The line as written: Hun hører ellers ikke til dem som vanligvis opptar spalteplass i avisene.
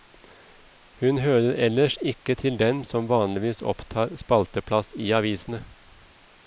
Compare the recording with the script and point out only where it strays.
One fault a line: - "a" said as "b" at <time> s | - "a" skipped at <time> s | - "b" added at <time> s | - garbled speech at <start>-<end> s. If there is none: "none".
none